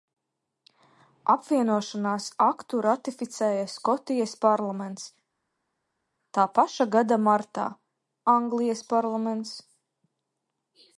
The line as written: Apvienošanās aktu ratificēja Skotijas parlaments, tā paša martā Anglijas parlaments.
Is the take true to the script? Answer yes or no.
no